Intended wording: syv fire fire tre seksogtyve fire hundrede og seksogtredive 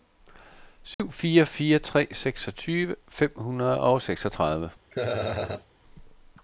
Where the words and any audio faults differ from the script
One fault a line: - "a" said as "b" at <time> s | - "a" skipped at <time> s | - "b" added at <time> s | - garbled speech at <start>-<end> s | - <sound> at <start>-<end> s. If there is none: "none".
- dropout at 0.9-1.0 s
- "fire" said as "fem" at 3.1 s
- laugh at 4.9-5.7 s